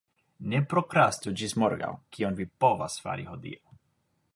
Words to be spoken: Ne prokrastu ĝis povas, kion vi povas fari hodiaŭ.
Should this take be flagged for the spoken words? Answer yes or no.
yes